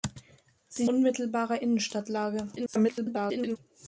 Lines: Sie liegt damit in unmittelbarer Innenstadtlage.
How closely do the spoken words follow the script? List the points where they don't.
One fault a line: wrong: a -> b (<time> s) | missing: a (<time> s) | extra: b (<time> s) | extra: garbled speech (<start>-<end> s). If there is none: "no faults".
missing: liegt damit in (0.8 s)
extra: garbled speech (2.6-3.6 s)